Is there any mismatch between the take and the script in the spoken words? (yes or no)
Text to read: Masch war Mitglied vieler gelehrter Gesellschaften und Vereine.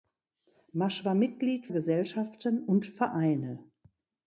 yes